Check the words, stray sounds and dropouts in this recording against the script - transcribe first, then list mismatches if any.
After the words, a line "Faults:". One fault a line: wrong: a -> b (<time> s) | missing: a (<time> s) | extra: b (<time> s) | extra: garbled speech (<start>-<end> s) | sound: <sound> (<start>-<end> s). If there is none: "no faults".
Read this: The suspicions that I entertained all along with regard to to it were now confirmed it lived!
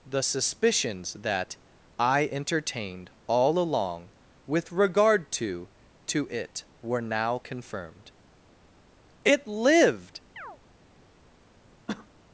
The suspicions that I entertained all along with regard to to it were now confirmed it lived!
Faults:
sound: chirp (10.4-10.6 s)
sound: cough (11.9-12.1 s)